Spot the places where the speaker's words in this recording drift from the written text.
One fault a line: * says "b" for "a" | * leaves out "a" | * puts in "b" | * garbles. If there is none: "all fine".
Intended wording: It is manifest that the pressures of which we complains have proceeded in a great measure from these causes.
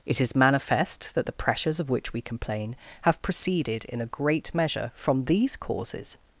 * says "complain" for "complains"